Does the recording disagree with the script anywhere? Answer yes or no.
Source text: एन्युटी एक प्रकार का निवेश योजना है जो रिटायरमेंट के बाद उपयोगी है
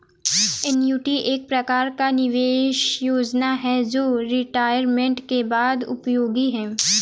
no